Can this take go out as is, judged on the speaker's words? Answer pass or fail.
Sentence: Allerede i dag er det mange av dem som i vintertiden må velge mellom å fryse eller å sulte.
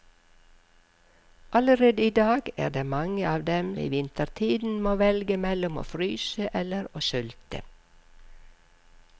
fail